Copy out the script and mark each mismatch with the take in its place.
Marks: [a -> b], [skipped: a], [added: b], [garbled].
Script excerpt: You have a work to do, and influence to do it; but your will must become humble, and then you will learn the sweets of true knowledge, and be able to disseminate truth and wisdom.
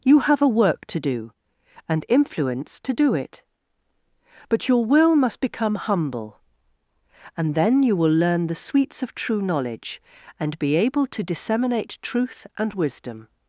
You have a work to do, and influence to do it; but your will must become humble, and then you will learn the sweets of true knowledge, and be able to disseminate truth and wisdom.